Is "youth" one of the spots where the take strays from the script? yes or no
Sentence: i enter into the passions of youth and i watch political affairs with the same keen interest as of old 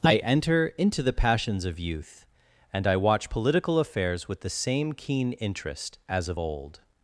no